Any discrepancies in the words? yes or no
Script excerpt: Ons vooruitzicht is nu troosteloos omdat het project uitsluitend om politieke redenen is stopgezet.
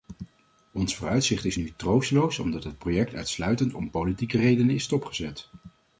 no